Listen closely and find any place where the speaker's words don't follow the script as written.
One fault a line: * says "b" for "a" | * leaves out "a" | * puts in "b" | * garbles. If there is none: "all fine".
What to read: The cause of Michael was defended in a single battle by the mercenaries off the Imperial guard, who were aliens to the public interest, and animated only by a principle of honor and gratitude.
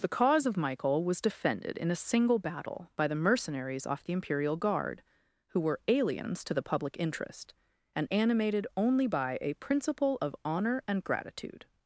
all fine